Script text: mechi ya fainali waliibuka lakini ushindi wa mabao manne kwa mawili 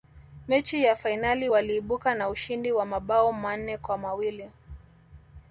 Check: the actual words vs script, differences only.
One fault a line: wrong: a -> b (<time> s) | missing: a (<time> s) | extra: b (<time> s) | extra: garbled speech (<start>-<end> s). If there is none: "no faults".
wrong: lakini -> na (2.1 s)